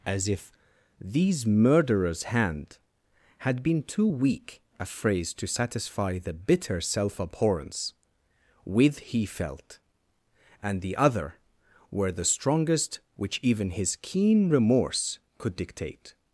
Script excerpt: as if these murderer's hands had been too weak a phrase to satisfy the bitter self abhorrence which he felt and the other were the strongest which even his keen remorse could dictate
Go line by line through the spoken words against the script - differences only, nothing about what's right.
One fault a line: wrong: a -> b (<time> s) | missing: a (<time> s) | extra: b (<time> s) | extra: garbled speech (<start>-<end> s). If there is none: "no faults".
wrong: hands -> hand (2.2 s)
wrong: which -> with (8.6 s)